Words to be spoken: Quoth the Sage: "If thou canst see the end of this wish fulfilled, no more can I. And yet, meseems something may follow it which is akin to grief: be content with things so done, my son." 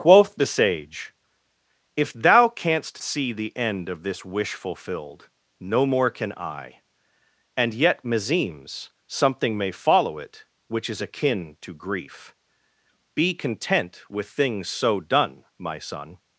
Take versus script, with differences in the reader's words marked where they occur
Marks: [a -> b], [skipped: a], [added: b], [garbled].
Quoth the Sage: "If thou canst see the end of this wish fulfilled, no more can I. And yet, meseems something may follow it which is akin to grief: be content with things so done, my son."